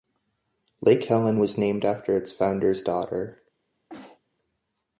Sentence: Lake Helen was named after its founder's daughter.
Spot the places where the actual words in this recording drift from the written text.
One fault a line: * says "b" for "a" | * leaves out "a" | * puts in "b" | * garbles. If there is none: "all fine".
all fine